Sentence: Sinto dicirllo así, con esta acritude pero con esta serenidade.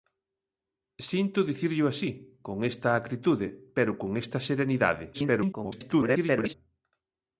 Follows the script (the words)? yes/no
no